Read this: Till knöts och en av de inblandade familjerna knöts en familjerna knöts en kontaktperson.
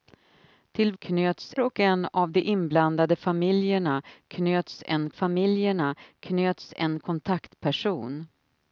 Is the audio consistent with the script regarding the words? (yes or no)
yes